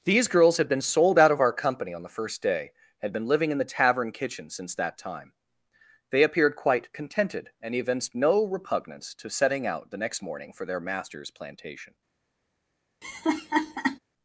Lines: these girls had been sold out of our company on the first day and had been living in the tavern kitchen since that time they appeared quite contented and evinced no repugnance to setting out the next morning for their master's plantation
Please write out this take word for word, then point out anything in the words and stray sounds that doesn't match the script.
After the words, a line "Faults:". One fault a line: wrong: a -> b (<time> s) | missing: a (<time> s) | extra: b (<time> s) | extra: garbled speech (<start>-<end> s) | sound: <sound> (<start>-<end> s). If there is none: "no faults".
these girls had been sold out of our company on the first day had been living in the tavern kitchen since that time they appeared quite contented and evinced no repugnance to setting out the next morning for their master's plantation
Faults:
missing: and (2.7 s)
sound: laugh (13.0-14.0 s)